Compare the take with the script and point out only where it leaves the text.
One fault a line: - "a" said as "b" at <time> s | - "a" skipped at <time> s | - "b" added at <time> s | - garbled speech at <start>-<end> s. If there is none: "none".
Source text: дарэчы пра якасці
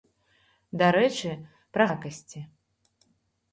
none